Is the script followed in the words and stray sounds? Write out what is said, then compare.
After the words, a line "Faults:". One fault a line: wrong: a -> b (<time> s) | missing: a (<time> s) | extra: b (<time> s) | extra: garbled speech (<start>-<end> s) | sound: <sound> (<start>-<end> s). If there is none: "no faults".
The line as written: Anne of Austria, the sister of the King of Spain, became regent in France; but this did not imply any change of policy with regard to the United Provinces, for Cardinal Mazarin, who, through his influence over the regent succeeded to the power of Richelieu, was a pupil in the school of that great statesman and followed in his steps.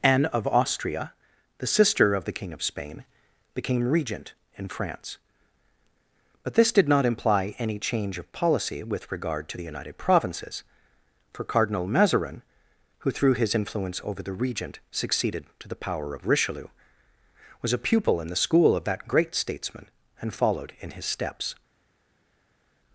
Anne of Austria, the sister of the King of Spain, became regent in France; but this did not imply any change of policy with regard to the United Provinces, for Cardinal Mazarin, who, through his influence over the regent succeeded to the power of Richelieu, was a pupil in the school of that great statesman and followed in his steps.
Faults:
no faults